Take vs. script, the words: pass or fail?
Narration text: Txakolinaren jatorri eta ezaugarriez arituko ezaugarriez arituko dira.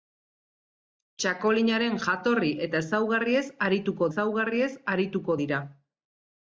pass